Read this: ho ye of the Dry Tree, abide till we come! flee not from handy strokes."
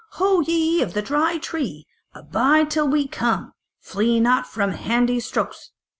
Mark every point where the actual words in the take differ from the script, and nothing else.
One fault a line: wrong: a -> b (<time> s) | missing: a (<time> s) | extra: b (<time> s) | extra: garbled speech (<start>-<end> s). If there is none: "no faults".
no faults